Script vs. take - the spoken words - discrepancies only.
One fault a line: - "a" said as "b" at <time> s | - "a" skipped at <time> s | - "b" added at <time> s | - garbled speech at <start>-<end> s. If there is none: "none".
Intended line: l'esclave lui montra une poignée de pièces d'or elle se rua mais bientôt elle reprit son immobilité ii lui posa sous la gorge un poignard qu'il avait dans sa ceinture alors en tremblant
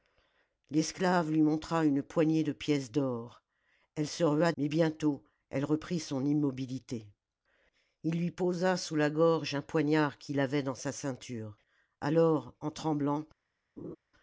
none